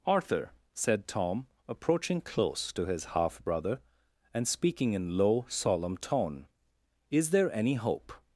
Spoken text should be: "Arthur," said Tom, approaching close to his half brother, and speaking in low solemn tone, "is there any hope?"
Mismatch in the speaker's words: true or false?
false